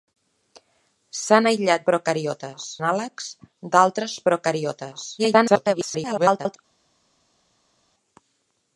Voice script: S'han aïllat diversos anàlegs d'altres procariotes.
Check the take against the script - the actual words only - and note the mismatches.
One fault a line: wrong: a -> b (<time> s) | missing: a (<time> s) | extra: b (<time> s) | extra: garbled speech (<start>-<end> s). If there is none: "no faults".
wrong: diversos -> procariotes (1.9 s)
extra: garbled speech (5.2-6.6 s)